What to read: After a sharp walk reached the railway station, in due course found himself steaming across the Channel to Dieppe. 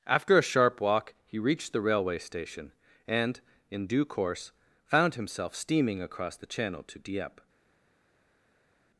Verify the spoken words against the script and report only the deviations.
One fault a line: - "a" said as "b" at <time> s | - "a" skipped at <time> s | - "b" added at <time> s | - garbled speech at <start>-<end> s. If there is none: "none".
- "he" added at 1.2 s
- "and" added at 3.1 s